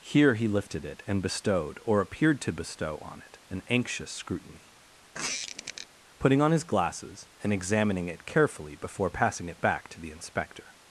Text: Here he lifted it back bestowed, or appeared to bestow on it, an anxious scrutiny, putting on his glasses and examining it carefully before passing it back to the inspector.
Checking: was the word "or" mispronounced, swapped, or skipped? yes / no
no